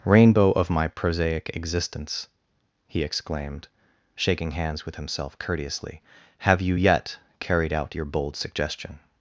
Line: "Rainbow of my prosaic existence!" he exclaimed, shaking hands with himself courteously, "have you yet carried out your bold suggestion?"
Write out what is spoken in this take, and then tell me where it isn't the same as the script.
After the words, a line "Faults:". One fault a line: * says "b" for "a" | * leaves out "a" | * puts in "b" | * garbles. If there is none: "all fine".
"Rainbow of my prosaic existence!" he exclaimed, shaking hands with himself courteously, "have you yet carried out your bold suggestion?"
Faults:
all fine